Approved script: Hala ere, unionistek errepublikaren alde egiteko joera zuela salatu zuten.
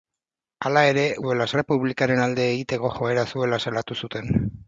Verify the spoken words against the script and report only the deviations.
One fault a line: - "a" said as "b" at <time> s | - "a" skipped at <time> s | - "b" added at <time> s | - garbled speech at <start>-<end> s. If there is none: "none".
- "unionistek" said as "zuela" at 1.2 s